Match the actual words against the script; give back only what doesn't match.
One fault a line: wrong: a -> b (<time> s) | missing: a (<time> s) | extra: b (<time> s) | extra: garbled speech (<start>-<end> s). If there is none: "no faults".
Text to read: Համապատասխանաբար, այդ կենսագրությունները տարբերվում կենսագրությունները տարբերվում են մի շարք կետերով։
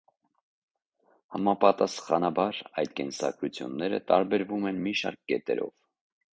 missing: կենսագրությունները տարբերվում (4.7 s)